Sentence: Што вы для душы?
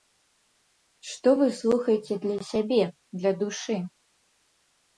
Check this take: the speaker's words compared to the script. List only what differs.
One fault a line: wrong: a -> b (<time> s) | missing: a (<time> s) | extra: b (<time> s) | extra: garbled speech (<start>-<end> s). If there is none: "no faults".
extra: слухаеце для сябе (1.6 s)